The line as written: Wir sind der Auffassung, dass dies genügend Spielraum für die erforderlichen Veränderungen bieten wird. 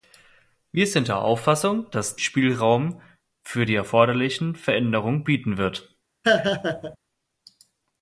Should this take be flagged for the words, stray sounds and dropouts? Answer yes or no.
yes